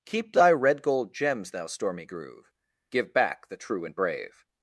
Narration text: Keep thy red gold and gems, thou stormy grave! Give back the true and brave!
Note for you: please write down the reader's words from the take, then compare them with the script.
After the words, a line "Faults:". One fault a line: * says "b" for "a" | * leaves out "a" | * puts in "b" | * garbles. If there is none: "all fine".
Keep thy red gold gems, thou stormy groove! Give back the true and brave!
Faults:
* leaves out "and"
* says "groove" for "grave"